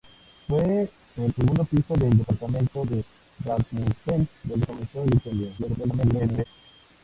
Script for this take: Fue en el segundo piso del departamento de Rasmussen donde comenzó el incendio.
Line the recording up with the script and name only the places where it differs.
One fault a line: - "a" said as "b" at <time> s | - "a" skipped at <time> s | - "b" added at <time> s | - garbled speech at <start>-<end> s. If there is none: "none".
- "el" skipped at 1.4 s
- garbled speech at 5.6-6.5 s